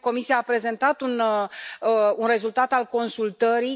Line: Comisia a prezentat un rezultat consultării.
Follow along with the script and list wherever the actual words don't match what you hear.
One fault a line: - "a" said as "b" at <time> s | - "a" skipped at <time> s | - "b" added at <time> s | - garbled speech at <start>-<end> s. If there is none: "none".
- "al" added at 2.7 s